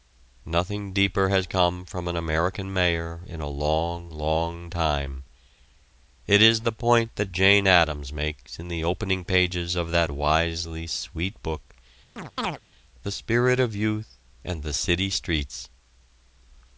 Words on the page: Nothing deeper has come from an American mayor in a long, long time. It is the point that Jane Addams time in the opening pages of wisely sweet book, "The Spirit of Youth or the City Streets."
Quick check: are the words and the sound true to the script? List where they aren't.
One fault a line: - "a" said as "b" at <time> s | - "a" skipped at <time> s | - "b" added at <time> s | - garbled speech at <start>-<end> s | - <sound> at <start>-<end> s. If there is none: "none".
- "time" said as "makes" at 8.1 s
- "that" added at 9.9 s
- chirp at 12.2-12.6 s
- "or" said as "and" at 14.4 s